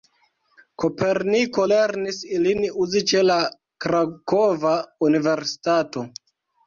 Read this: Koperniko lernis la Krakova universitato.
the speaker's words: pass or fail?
fail